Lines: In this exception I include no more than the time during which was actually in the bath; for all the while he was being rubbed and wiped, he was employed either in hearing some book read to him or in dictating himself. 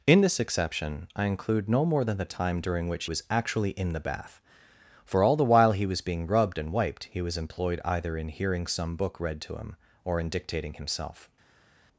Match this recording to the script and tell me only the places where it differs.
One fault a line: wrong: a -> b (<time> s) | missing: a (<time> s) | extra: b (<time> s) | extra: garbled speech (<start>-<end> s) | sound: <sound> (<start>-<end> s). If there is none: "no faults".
no faults